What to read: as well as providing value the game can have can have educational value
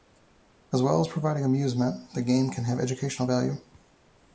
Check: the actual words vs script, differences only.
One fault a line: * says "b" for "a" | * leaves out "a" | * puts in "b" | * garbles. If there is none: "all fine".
* says "amusement" for "value"
* leaves out "can have"